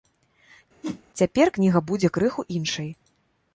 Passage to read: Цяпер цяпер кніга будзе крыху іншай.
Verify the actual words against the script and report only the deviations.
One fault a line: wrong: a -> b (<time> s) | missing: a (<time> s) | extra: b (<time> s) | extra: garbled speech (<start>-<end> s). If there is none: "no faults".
missing: цяпер (1.5 s)